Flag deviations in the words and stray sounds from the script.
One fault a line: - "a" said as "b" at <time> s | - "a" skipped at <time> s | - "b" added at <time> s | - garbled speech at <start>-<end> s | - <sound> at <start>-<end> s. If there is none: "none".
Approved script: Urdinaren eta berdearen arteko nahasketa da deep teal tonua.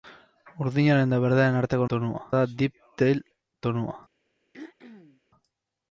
- "nahasketa" said as "tonua" at 1.9 s
- throat clearing at 4.5-5.2 s